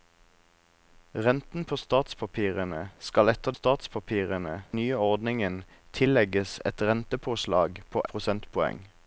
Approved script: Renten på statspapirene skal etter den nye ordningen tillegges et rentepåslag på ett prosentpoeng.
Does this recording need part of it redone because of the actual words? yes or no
yes